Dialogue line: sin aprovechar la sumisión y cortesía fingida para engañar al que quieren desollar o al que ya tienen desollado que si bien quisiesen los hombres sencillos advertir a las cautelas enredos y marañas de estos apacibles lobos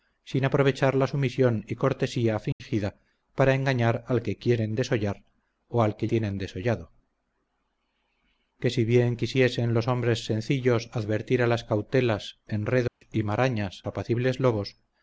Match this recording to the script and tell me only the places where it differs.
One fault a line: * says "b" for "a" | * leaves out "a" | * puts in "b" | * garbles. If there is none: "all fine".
* leaves out "ya"
* leaves out "de estos"